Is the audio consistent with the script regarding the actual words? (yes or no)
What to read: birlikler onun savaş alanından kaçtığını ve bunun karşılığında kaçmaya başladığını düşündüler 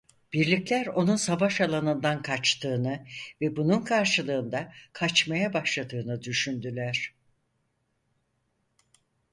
yes